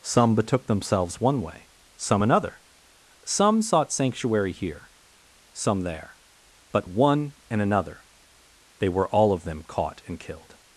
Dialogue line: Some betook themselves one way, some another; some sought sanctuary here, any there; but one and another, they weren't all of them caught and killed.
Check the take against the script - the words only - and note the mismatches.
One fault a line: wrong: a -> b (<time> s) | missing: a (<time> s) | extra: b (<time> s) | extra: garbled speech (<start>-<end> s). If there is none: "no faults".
wrong: any -> some (5.5 s)
wrong: weren't -> were (8.9 s)